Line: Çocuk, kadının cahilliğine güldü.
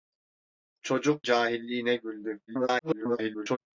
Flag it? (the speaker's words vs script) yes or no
yes